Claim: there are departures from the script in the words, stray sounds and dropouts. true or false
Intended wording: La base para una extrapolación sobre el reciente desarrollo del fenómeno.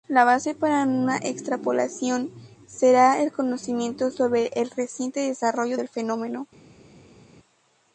true